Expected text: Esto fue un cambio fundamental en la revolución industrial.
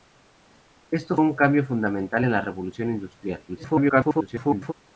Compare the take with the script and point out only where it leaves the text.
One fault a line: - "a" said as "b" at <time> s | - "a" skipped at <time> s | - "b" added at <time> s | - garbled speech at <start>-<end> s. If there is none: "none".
- "fue" skipped at 1.1 s
- garbled speech at 3.5-4.7 s